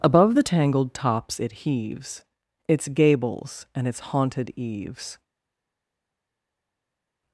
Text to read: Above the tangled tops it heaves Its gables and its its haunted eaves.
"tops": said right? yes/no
yes